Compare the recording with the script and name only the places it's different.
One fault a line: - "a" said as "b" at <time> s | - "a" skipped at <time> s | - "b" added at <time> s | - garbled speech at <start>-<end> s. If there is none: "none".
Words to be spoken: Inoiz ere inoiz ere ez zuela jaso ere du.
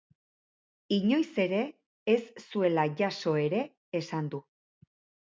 - "inoiz ere" skipped at 1.6 s
- "esan" added at 4.0 s